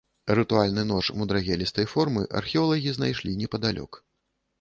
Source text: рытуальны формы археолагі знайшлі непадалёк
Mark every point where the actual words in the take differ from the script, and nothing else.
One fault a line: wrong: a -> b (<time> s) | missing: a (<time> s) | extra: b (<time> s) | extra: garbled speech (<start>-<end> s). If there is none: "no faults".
extra: нож мудрагелістай (0.9 s)